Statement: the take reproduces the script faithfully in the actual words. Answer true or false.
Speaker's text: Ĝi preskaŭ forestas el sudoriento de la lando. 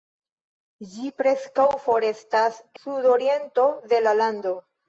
false